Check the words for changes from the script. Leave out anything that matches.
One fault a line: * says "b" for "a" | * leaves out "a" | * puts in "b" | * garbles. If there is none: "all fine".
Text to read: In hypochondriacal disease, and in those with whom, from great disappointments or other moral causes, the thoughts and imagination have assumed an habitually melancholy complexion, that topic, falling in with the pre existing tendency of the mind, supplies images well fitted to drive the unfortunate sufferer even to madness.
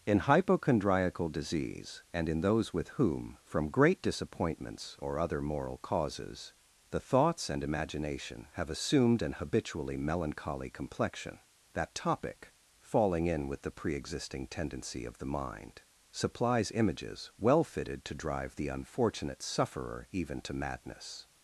all fine